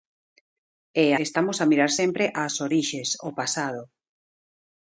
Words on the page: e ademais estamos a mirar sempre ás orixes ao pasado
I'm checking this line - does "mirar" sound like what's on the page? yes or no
yes